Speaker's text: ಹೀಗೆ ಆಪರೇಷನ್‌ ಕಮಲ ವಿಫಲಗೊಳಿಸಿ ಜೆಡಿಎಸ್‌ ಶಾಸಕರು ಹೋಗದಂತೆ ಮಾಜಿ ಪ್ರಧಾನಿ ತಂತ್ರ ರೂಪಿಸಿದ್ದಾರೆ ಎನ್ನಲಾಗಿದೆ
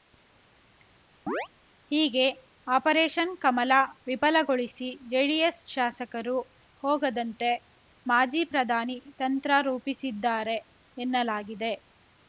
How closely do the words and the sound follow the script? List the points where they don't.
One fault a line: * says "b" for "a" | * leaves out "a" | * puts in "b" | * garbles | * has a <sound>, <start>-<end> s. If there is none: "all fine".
* has a chirp, 1.3-1.5 s